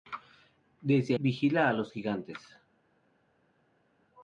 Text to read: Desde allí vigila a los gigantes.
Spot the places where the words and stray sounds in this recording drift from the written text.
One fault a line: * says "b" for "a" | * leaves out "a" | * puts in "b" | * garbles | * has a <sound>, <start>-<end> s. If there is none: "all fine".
* leaves out "allí"